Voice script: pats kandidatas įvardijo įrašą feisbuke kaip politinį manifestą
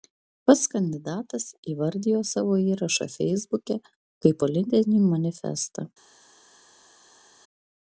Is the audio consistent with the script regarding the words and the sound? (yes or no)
no